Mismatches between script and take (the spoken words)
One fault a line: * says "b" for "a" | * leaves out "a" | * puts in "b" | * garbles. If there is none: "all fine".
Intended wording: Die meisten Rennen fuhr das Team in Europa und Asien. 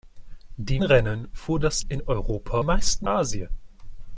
* leaves out "meisten"
* leaves out "Team"
* says "meisten" for "und"